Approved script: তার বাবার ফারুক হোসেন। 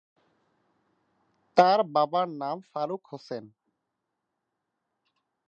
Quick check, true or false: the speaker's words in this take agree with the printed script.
false